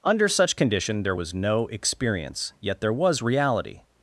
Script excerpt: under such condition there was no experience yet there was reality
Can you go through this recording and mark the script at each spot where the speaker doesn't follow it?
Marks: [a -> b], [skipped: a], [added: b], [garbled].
under such condition there was no experience yet there was reality